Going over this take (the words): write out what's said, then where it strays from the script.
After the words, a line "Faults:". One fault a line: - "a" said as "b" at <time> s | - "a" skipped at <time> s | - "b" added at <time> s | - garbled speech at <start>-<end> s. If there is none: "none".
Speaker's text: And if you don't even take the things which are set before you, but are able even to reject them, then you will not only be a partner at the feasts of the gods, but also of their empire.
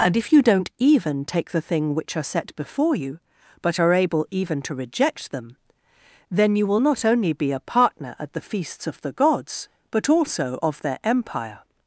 And if you don't even take the thing which are set before you, but are able even to reject them, then you will not only be a partner at the feasts of the gods, but also of their empire.
Faults:
- "things" said as "thing" at 1.6 s